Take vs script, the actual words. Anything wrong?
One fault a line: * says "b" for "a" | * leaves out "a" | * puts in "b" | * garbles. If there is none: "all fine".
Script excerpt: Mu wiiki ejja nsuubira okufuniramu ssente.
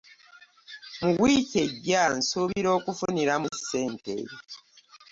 all fine